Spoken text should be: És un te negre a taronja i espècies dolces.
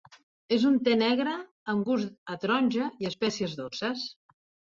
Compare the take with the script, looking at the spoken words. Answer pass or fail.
fail